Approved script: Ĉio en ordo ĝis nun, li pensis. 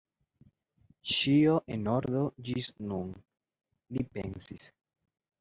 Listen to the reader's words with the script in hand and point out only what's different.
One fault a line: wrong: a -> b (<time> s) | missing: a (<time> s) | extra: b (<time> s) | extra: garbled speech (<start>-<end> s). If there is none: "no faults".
no faults